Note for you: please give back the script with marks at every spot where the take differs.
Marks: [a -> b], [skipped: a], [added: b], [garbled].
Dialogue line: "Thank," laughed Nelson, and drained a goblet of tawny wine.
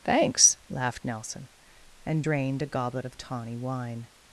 ["Thank," -> Thanks] laughed Nelson, and drained a goblet of tawny wine.